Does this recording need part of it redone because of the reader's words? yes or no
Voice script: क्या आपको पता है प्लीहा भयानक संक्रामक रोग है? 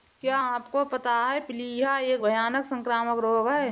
yes